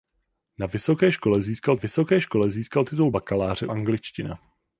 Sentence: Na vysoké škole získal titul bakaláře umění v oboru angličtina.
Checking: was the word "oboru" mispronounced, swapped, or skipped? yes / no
yes